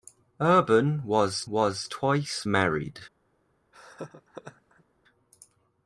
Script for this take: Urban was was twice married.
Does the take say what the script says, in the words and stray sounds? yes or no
no